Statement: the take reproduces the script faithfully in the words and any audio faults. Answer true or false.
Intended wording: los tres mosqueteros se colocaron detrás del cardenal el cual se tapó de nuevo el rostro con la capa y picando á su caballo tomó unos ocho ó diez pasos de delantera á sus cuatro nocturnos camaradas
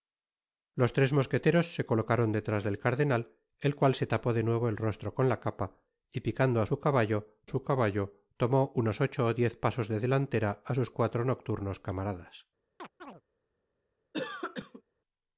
false